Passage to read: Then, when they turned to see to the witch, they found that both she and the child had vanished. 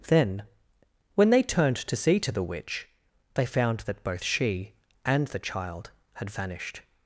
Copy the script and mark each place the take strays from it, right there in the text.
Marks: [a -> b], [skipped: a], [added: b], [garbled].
Then, when they turned to see to the witch, they found that both she and the child had vanished.